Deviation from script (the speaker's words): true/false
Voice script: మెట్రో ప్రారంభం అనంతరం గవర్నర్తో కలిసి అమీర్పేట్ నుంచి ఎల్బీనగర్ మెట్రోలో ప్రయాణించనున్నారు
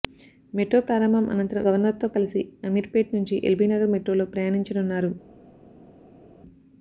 false